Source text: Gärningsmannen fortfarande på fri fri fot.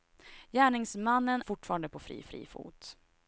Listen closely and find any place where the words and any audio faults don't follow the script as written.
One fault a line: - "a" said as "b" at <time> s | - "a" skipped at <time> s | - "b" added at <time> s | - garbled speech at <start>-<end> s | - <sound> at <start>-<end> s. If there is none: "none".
none